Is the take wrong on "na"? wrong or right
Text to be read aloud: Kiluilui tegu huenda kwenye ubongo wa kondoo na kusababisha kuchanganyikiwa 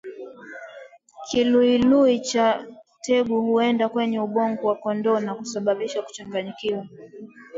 right